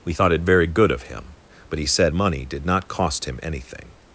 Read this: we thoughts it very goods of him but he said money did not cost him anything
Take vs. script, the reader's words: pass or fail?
fail